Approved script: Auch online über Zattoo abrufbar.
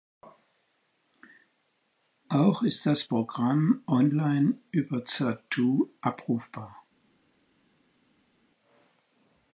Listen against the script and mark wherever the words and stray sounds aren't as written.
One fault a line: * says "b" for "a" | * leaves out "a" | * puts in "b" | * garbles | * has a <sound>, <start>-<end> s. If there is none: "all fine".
* puts in "ist das Programm"